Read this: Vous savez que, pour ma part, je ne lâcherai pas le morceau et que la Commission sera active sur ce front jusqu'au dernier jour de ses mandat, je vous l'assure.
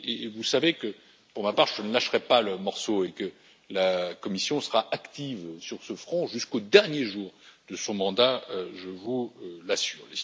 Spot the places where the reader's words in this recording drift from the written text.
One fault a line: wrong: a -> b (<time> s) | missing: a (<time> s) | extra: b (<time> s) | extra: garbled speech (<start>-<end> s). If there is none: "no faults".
wrong: ses -> son (7.7 s)